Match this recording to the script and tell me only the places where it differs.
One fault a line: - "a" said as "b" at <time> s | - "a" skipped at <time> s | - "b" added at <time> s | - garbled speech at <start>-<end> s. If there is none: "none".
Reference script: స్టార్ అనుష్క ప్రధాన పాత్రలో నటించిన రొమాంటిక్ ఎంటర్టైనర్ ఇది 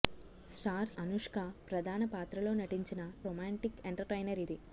none